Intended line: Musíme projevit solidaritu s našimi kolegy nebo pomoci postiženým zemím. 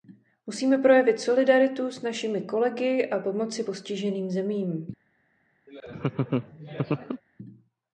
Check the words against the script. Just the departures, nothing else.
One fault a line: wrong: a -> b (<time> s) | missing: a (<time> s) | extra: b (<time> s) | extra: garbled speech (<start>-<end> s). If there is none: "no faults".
wrong: nebo -> a (3.1 s)